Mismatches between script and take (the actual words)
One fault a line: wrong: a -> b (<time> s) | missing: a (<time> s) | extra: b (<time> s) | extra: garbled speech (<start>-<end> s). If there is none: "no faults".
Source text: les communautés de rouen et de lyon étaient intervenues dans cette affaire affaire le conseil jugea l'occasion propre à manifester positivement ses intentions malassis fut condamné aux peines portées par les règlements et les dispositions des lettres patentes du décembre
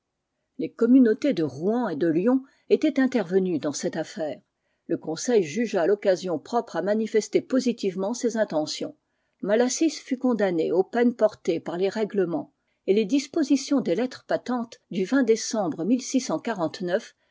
missing: affaire (4.4 s)